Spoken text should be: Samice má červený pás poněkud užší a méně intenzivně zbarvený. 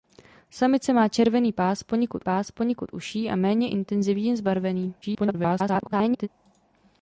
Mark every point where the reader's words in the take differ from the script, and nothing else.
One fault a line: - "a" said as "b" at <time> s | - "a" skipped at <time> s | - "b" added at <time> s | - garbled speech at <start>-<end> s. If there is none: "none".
- "pás poněkud" added at 2.2 s
- garbled speech at 5.0-6.3 s